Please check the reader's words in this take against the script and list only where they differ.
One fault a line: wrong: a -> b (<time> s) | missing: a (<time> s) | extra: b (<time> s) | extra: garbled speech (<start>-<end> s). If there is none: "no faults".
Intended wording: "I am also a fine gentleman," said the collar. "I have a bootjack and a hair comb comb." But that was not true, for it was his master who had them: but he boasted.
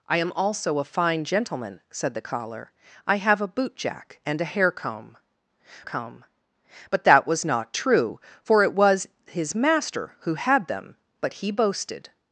no faults